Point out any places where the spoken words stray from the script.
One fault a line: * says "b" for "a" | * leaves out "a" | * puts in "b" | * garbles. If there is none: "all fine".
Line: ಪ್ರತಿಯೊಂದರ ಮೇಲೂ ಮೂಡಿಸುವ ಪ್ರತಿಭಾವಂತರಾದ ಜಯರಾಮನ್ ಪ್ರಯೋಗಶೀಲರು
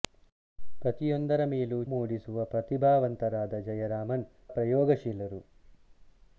all fine